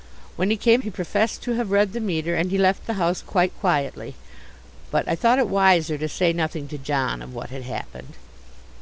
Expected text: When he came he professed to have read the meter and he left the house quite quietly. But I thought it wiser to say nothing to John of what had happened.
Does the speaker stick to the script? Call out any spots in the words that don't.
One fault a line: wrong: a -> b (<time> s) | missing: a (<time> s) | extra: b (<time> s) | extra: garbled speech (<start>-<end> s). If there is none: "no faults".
no faults